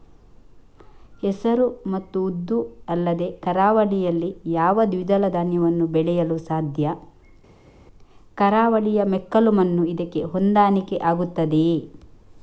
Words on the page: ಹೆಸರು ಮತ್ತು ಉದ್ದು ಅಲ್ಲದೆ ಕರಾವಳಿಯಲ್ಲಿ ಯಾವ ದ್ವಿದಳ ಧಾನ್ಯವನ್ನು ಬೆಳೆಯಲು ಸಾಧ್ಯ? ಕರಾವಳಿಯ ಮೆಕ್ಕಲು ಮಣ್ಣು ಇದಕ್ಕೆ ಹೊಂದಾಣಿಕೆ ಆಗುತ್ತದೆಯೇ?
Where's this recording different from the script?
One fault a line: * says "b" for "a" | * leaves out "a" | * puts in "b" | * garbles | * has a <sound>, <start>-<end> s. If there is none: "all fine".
all fine